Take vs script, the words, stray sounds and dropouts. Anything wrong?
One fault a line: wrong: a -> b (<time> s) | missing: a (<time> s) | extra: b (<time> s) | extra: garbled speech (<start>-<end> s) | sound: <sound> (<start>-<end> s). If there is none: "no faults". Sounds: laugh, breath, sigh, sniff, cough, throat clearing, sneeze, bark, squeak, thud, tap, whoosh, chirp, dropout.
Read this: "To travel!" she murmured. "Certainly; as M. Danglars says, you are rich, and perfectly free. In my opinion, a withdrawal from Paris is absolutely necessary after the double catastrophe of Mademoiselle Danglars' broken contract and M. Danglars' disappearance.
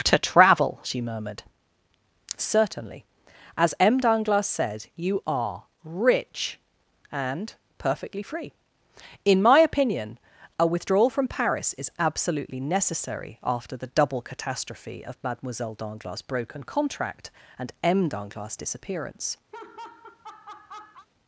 wrong: says -> said (4.5 s)
sound: laugh (19.5-21.1 s)